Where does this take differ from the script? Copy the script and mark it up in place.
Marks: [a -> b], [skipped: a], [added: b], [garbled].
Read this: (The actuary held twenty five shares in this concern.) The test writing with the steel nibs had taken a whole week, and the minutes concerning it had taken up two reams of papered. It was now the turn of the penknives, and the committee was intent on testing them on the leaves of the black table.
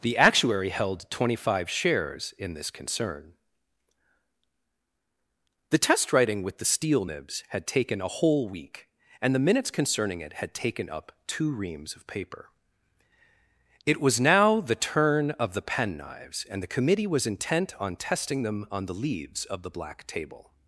(The actuary held twenty five shares in this concern.) The test writing with the steel nibs had taken a whole week, and the minutes concerning it had taken up two reams of [papered. -> paper] It was now the turn of the penknives, and the committee was intent on testing them on the leaves of the black table.